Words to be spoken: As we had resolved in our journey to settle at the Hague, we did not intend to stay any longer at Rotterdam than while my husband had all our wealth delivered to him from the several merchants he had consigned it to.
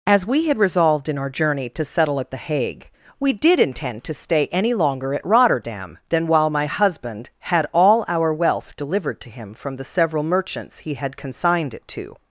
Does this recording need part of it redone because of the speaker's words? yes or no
yes